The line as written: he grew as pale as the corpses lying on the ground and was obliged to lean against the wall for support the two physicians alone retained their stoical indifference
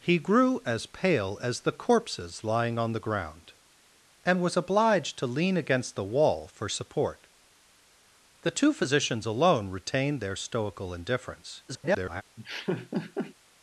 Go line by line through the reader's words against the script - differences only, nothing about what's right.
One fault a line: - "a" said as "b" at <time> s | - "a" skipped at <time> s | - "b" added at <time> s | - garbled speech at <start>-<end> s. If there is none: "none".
- garbled speech at 11.7-12.2 s